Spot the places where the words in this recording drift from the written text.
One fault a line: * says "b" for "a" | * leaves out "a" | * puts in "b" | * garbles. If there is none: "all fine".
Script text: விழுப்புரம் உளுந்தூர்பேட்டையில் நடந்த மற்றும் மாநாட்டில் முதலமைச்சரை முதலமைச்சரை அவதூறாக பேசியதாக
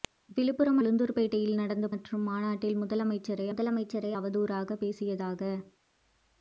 all fine